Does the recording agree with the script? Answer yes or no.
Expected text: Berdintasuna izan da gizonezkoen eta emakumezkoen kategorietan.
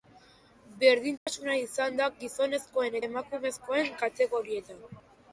no